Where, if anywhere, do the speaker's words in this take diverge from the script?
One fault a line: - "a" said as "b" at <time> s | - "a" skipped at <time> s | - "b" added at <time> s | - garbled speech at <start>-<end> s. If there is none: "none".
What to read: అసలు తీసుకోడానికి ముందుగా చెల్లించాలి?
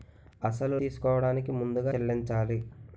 none